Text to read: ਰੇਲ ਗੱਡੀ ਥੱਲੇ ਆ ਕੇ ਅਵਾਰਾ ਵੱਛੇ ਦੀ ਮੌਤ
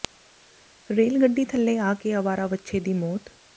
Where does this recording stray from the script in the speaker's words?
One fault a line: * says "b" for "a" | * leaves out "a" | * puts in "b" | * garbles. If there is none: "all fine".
all fine